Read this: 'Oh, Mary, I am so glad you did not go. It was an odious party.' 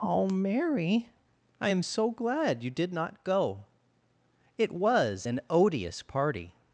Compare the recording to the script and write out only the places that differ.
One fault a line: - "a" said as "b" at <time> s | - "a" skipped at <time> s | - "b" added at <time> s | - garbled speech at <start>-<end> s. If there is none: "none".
none